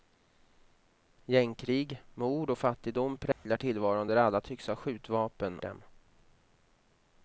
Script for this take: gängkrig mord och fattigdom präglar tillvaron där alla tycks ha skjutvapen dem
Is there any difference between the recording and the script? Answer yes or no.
no